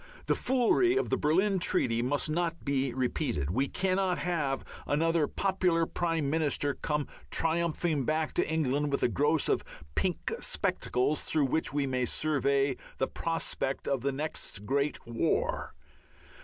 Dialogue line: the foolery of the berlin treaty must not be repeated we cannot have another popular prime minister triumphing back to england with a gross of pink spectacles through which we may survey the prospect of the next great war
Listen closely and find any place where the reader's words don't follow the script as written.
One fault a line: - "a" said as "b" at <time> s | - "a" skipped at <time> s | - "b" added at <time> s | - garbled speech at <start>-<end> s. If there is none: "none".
- "come" added at 6.7 s